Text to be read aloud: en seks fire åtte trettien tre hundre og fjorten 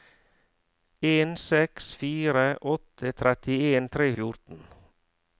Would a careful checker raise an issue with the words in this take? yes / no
yes